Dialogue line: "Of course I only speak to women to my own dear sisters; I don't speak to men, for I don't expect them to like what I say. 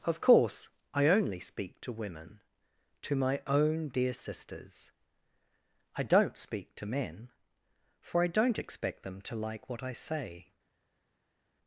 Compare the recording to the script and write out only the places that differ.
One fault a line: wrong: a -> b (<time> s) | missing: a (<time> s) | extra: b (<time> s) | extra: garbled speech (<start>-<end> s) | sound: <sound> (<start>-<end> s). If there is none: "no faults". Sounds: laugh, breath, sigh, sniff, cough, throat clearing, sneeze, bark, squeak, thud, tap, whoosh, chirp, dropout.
no faults